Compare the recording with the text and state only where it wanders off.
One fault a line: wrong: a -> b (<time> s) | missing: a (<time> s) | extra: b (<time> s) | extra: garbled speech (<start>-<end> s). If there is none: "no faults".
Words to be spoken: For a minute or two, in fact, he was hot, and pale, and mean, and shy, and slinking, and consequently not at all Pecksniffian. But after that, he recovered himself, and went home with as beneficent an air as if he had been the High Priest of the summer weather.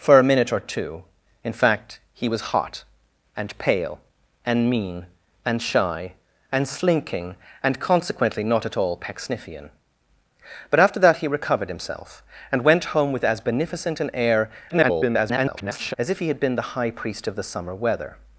extra: garbled speech (14.7-15.9 s)